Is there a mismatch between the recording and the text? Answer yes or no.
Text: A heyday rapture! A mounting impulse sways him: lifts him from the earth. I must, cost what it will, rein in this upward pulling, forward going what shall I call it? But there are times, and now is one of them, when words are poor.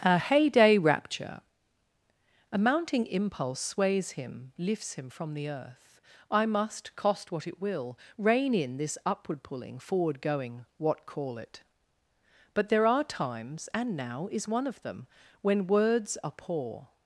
yes